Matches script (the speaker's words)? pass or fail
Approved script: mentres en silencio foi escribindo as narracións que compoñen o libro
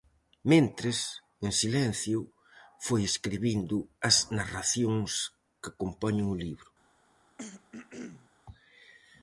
pass